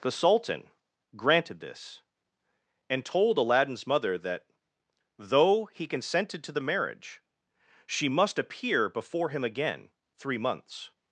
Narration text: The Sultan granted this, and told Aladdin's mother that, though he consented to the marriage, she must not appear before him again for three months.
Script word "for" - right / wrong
wrong